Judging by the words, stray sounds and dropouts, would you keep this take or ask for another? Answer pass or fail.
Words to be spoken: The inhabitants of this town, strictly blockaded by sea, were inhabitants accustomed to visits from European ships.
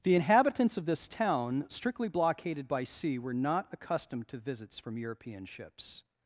fail